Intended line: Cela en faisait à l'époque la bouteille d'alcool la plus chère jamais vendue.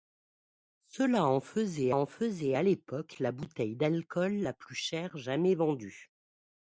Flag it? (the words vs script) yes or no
yes